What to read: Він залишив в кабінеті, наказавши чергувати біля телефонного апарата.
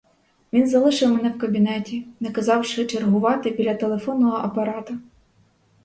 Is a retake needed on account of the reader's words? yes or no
yes